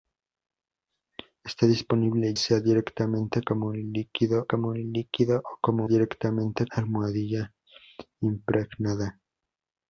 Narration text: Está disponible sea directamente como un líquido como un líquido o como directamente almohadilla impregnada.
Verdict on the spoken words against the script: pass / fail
pass